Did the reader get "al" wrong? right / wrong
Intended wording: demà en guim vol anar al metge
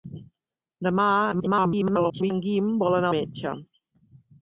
wrong